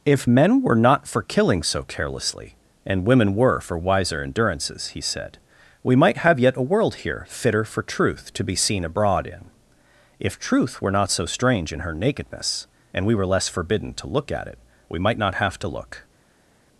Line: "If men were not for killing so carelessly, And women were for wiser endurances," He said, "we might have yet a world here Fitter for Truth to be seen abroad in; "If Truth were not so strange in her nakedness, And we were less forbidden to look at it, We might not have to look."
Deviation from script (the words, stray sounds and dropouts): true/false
false